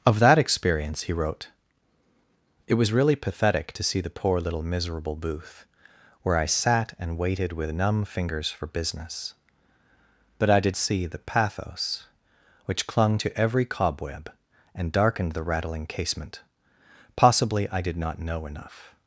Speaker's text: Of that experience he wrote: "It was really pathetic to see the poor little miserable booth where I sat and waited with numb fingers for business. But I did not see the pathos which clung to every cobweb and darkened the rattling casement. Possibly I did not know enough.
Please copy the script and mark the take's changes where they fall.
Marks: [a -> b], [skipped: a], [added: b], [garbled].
Of that experience he wrote: "It was really pathetic to see the poor little miserable booth where I sat and waited with numb fingers for business. But I did [skipped: not] see the pathos which clung to every cobweb and darkened the rattling casement. Possibly I did not know enough.